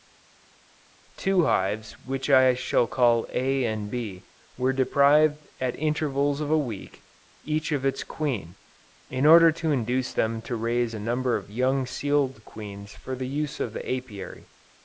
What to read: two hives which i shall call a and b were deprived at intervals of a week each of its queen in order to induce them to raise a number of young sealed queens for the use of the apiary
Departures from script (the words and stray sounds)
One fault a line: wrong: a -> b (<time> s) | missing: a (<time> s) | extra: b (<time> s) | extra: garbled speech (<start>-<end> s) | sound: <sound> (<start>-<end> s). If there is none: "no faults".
no faults